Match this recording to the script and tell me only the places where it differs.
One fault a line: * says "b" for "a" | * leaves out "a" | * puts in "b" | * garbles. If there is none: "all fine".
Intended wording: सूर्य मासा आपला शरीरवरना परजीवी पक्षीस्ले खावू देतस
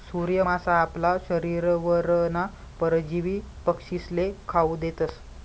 all fine